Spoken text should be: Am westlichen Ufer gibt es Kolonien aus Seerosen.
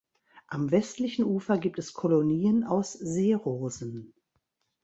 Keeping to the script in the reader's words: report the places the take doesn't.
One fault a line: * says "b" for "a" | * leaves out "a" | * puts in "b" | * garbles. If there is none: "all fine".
all fine